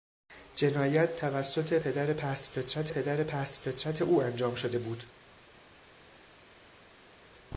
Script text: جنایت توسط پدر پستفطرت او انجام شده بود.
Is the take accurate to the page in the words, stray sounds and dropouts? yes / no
no